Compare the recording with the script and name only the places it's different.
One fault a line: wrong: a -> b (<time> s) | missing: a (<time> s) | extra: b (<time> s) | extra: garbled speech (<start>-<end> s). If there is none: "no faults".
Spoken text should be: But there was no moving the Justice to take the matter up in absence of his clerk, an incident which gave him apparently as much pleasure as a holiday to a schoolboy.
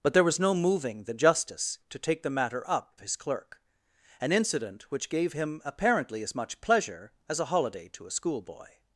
missing: in absence of (3.0 s)